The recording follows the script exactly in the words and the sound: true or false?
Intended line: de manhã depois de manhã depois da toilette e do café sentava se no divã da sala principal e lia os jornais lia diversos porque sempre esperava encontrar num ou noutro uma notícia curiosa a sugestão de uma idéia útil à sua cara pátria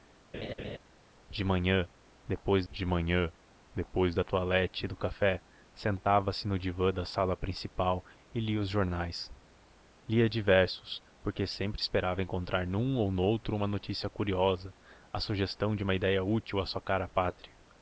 false